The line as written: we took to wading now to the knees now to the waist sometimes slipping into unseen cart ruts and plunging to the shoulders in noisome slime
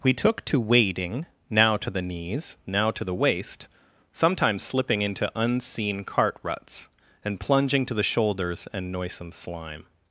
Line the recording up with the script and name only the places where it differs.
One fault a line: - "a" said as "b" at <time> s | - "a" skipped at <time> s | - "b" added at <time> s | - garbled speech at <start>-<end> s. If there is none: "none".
- "in" said as "and" at 8.7 s